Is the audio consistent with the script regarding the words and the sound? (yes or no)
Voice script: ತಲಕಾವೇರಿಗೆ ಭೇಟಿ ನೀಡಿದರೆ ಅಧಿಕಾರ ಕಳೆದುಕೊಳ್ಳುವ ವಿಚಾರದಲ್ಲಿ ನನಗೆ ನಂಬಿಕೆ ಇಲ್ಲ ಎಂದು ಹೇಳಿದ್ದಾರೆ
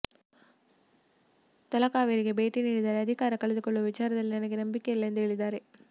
yes